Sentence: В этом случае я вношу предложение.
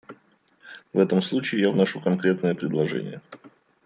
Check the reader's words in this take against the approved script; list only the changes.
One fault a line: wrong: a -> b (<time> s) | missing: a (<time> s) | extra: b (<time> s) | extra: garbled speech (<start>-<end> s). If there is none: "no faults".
extra: конкретное (2.0 s)